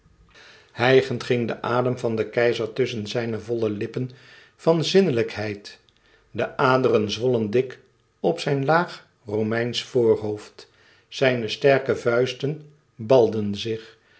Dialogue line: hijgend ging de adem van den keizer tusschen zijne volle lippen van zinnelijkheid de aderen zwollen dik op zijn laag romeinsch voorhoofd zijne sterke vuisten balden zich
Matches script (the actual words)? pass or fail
pass